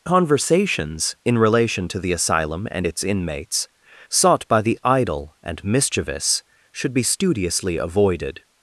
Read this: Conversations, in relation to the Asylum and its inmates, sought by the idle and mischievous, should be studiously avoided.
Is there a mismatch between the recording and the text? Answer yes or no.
no